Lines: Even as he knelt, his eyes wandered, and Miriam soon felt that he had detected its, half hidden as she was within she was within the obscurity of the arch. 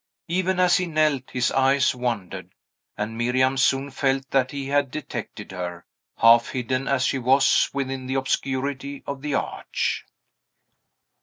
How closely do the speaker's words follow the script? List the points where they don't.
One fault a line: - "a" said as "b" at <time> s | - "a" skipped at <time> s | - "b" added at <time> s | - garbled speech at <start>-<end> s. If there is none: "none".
- "its" said as "her" at 5.5 s
- "she was within" skipped at 8.1 s